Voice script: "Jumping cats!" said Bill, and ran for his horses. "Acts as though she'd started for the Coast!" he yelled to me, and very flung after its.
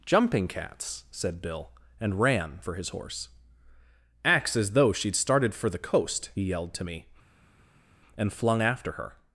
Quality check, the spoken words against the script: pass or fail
fail